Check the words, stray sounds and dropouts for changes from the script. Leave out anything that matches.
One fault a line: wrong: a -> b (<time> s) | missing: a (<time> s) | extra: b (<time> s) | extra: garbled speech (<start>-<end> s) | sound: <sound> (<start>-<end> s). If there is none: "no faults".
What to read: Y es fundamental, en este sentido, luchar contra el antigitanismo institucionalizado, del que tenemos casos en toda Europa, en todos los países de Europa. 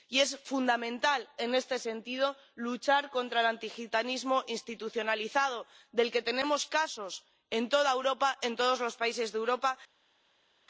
no faults